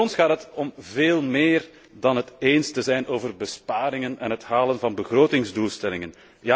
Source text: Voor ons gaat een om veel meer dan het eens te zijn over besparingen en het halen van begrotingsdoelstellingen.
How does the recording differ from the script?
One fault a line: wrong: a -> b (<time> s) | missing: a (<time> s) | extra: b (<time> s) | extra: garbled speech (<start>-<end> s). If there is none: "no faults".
wrong: een -> het (0.3 s)